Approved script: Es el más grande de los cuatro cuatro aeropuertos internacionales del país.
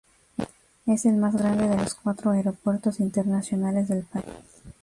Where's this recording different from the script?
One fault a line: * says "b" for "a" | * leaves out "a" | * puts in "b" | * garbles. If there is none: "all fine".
* leaves out "cuatro"